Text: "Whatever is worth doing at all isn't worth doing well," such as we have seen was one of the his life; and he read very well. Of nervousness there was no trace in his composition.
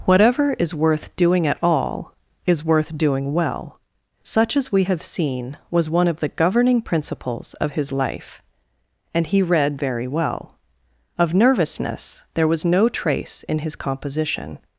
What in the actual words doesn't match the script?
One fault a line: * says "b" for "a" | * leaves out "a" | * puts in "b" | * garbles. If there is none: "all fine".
* says "is" for "isn't"
* puts in "governing principles of"